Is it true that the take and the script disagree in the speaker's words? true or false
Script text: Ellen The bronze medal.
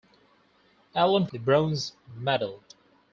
false